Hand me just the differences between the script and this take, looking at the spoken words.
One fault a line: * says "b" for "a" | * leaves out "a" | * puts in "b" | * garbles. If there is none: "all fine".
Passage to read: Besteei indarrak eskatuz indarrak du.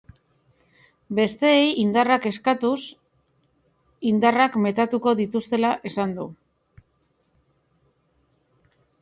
* puts in "metatuko dituztela esan"